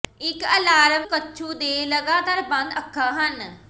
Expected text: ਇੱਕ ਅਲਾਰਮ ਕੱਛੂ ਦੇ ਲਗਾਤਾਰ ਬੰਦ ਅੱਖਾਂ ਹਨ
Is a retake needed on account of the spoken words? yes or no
no